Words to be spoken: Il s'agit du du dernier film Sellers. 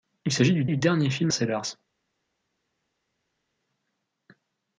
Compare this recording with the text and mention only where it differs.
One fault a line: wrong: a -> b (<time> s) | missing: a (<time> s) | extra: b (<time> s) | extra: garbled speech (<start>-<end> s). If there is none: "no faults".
no faults